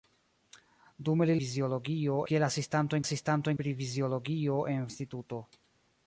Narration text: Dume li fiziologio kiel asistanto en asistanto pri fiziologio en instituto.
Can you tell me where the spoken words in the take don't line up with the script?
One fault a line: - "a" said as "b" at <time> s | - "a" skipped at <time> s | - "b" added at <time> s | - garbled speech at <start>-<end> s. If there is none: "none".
none